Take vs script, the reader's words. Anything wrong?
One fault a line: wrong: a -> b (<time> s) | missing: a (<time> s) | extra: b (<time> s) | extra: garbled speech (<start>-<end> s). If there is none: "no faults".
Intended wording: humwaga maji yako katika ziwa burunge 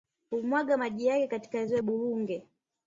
wrong: yako -> yake (1.1 s)